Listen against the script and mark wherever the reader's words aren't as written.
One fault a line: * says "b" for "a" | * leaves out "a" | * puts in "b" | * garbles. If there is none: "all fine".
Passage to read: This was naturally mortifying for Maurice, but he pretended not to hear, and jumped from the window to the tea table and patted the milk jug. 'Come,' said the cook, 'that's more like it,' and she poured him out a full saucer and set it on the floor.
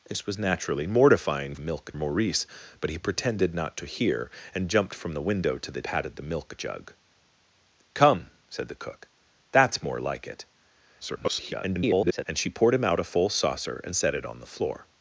* says "milk" for "for"
* leaves out "tea table and"
* garbles